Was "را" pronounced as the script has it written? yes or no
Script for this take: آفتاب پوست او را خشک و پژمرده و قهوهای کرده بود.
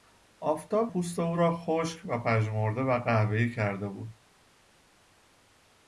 yes